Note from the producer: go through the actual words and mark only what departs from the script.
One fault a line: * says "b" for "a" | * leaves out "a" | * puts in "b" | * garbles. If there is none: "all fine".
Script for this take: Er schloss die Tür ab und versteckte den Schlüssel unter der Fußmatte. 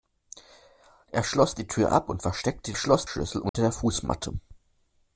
* says "schloss" for "den"